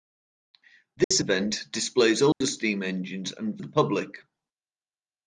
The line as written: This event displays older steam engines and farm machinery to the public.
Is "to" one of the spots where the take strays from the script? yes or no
yes